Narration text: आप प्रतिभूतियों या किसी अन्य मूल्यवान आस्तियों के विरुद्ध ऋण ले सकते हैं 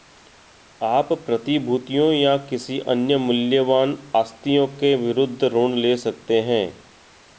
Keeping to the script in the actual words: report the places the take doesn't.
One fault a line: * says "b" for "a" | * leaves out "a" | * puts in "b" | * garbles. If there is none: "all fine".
all fine